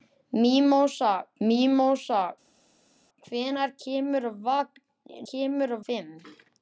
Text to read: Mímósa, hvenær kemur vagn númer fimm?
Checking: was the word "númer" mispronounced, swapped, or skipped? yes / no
yes